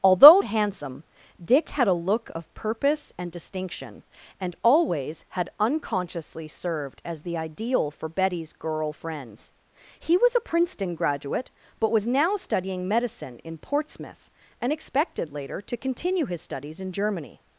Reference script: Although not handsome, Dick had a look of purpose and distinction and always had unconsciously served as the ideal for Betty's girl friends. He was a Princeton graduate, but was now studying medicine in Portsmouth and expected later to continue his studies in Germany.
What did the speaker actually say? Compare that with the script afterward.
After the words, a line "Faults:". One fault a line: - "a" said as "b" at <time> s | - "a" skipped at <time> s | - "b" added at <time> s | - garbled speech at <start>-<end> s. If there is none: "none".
Although handsome, Dick had a look of purpose and distinction and always had unconsciously served as the ideal for Betty's girl friends. He was a Princeton graduate, but was now studying medicine in Portsmouth and expected later to continue his studies in Germany.
Faults:
- "not" skipped at 0.4 s